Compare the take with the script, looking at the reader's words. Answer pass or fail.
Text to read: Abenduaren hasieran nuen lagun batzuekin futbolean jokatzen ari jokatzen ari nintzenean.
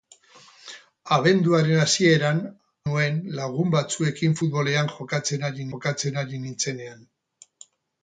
pass